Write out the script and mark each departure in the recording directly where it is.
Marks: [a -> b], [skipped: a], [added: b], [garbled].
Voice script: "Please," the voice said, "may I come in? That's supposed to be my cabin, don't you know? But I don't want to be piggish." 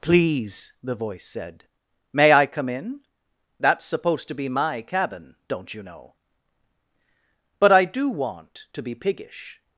"Please," the voice said, "may I come in? That's supposed to be my cabin, don't you know? But I [don't -> do] want to be piggish."